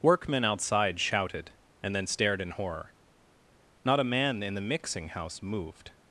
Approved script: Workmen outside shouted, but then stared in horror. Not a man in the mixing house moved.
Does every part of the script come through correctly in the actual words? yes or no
no